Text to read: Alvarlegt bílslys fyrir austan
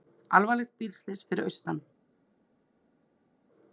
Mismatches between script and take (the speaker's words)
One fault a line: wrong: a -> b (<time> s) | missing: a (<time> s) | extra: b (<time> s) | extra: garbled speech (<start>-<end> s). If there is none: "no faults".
no faults